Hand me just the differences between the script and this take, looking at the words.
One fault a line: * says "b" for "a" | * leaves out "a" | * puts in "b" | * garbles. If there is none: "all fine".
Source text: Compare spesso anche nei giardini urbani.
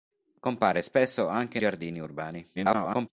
* leaves out "nei"
* garbles